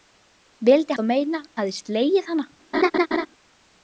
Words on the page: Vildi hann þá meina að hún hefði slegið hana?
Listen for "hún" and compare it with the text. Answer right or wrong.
wrong